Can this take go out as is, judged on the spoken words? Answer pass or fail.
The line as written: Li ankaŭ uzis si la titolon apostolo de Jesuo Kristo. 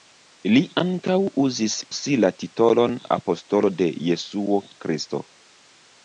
pass